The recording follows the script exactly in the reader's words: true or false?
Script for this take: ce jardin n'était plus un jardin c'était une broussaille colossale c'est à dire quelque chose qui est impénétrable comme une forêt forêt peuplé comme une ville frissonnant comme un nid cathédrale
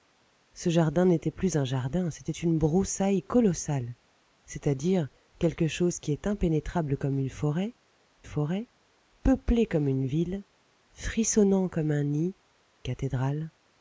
true